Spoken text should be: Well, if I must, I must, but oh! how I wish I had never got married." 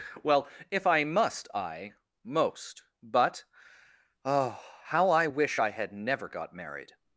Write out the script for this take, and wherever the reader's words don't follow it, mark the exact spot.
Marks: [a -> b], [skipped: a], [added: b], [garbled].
Well, if I must, I [must, -> most] but oh! how I wish I had never got married."